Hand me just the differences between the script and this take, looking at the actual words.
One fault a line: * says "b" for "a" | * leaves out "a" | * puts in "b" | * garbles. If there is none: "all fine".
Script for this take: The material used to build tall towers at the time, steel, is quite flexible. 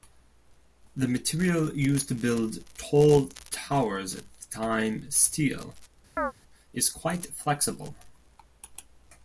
all fine